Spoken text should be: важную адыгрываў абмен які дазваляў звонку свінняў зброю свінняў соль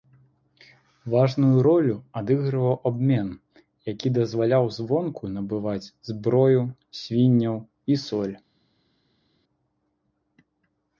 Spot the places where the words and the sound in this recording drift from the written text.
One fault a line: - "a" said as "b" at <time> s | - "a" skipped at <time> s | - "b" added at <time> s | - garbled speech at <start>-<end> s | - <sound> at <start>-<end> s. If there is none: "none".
- "ролю" added at 1.6 s
- "свінняў" said as "набываць" at 5.3 s
- "і" added at 7.9 s